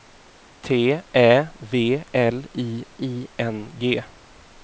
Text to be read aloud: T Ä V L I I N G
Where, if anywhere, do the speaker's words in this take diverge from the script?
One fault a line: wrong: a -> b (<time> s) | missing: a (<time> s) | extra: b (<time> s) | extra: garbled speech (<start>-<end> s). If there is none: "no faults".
no faults